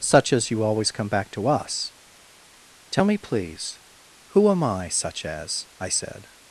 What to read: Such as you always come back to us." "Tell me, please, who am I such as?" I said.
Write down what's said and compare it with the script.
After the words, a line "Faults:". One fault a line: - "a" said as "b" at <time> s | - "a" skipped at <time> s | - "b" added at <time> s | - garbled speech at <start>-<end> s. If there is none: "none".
Such as you always come back to us." "Tell me, please, who am I such as?" I said.
Faults:
none